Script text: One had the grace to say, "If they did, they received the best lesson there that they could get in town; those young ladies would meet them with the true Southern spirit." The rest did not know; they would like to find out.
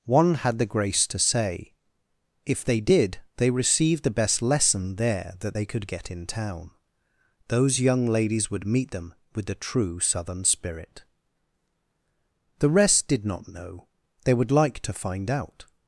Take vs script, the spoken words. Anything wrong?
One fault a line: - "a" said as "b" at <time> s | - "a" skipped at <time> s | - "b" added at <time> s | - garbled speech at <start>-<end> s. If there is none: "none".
none